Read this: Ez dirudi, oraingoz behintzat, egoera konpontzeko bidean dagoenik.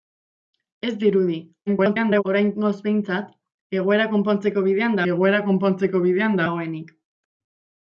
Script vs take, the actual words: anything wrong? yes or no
yes